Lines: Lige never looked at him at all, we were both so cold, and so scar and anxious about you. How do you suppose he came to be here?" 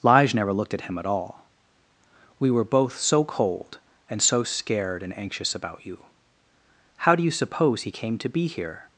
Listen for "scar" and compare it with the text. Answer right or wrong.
wrong